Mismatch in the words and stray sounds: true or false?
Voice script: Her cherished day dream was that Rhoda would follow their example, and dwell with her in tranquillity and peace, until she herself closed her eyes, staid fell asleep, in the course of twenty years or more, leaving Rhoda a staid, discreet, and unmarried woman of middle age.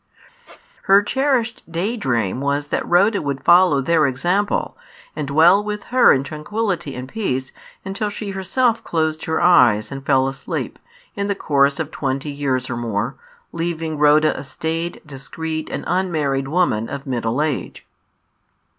true